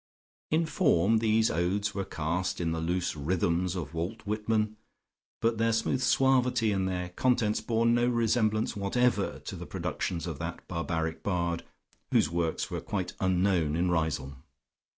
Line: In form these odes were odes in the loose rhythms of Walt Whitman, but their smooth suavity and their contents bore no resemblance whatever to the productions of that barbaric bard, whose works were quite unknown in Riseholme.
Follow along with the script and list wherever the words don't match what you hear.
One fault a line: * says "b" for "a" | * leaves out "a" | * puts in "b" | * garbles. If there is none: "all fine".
* says "cast" for "odes"